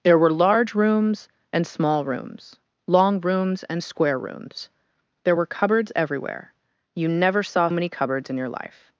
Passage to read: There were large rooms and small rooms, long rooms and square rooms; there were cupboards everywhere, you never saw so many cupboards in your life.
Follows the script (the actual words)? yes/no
no